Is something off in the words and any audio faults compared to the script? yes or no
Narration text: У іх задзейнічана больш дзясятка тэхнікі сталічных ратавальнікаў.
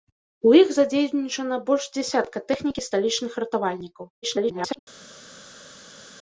yes